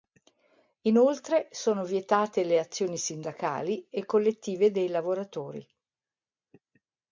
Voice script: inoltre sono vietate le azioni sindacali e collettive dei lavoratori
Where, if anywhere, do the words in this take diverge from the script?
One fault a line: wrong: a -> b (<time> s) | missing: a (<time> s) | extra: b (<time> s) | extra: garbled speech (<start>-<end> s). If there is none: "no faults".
no faults